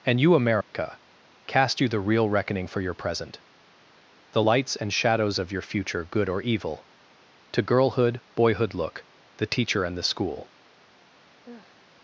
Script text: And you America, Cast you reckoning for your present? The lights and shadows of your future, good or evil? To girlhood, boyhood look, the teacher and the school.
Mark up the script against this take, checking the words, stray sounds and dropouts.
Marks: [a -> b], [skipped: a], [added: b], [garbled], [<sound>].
And you America, [dropout] Cast you [added: the real] reckoning for your present? The lights and shadows of your future, good or evil? To girlhood, boyhood look, the teacher and the school. [sigh]